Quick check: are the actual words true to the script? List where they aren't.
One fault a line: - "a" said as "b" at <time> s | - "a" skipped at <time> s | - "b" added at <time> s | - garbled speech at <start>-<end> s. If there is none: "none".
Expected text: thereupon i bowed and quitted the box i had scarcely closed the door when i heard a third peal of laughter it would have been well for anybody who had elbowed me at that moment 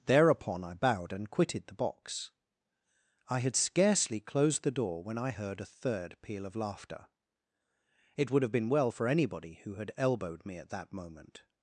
none